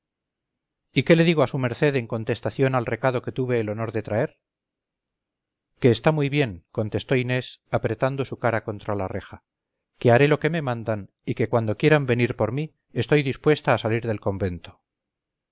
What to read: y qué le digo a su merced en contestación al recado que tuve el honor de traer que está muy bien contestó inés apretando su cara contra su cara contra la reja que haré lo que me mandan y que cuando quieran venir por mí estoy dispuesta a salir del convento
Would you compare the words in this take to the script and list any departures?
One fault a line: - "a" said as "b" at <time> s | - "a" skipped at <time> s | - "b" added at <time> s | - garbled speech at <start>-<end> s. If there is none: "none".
- "su cara contra" skipped at 8.9 s